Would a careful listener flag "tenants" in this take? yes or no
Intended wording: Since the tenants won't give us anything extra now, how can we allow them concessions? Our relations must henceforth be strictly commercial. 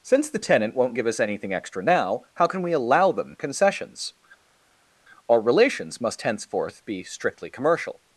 yes